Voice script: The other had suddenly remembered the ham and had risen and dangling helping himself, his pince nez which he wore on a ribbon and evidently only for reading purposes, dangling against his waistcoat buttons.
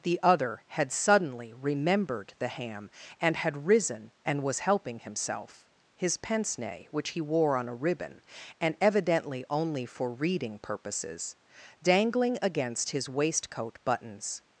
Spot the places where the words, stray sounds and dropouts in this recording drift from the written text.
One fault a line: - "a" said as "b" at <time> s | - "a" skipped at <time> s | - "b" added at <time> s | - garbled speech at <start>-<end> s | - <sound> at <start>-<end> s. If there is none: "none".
- "dangling" said as "was" at 4.4 s